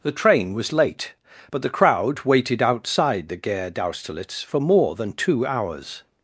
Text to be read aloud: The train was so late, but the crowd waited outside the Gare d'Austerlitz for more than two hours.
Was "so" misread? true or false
true